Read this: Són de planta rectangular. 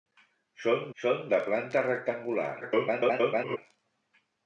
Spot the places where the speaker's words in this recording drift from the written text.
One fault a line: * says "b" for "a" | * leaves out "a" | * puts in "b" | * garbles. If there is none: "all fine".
* puts in "són"
* garbles